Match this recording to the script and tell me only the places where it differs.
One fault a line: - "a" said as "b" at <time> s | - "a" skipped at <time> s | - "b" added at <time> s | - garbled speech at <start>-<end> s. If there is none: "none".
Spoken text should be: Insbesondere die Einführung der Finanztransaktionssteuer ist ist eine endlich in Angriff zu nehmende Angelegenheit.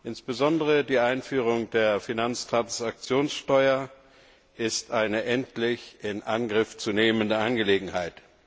- "ist" skipped at 4.9 s